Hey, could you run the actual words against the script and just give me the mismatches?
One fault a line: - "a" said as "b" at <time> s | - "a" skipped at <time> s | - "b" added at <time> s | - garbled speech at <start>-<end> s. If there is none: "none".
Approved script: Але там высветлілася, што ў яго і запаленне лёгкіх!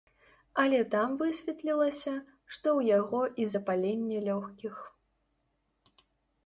none